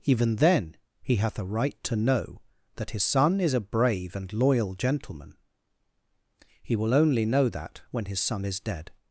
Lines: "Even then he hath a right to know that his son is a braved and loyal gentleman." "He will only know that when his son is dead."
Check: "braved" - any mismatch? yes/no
yes